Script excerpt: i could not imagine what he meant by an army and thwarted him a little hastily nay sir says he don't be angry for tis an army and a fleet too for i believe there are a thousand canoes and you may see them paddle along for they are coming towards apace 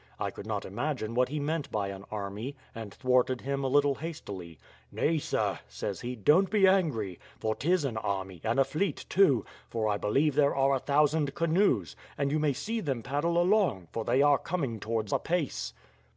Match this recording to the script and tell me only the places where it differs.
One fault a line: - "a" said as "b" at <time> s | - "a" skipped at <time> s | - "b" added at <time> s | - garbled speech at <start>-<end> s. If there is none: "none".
none